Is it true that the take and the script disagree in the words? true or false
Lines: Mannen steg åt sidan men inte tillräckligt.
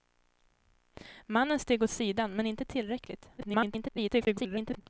true